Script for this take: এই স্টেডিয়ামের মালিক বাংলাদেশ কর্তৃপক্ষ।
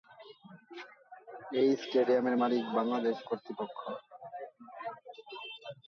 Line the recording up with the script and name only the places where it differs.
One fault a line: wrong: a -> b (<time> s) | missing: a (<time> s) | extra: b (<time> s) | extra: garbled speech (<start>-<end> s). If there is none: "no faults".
no faults